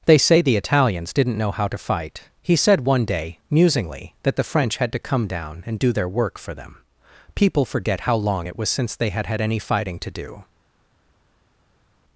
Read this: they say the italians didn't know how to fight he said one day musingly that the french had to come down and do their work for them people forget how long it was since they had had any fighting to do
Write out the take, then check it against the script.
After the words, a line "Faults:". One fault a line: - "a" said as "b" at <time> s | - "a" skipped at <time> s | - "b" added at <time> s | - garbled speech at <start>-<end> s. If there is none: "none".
they say the italians didn't know how to fight he said one day musingly that the french had to come down and do their work for them people forget how long it was since they had had any fighting to do
Faults:
none